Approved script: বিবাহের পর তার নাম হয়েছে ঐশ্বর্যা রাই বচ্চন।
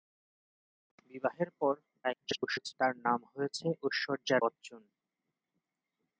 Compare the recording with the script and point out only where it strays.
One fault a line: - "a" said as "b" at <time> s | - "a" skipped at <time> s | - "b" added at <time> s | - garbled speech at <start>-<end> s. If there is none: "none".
- garbled speech at 2.0-2.7 s
- "রাই" skipped at 4.4 s